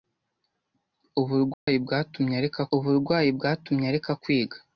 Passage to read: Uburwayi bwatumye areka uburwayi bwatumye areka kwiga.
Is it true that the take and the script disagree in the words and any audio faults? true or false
true